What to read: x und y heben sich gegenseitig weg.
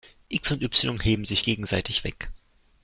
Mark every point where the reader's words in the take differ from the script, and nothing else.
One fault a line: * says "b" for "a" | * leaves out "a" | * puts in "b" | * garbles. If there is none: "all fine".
all fine